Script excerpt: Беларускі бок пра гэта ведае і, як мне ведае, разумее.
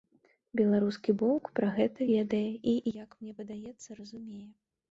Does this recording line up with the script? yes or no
no